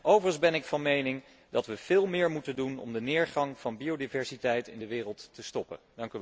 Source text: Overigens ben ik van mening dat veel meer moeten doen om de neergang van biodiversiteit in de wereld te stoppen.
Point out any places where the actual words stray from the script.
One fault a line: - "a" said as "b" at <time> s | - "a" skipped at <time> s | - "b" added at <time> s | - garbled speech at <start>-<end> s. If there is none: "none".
- "we" added at 1.6 s